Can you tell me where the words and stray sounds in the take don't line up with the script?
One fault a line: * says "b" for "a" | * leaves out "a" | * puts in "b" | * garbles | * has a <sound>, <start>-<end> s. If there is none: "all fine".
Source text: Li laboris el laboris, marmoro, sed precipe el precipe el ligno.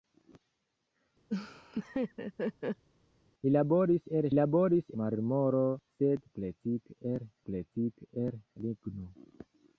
* has a laugh, 1.3-2.8 s